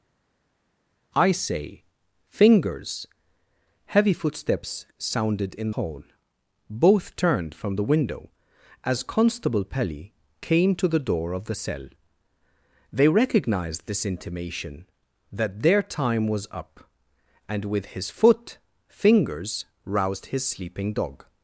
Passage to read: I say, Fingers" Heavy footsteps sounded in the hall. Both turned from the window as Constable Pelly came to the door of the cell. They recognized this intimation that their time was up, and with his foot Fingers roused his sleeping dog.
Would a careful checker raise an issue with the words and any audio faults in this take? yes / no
yes